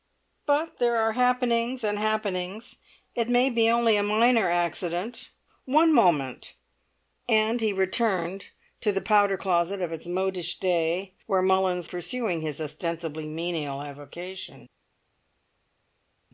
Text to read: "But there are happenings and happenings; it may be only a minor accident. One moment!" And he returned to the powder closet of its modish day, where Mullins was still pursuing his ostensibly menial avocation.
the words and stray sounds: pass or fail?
fail